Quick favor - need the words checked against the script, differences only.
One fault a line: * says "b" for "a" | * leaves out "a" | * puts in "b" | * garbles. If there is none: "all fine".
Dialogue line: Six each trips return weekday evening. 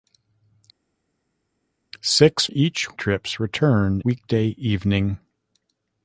all fine